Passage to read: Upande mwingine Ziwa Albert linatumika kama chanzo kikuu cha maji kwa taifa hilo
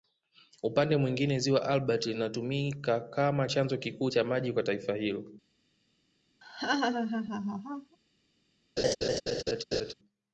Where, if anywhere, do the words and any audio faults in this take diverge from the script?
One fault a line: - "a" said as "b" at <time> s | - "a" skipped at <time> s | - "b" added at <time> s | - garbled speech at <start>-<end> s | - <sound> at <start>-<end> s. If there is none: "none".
- laugh at 6.4-8.0 s
- laugh at 8.8-9.9 s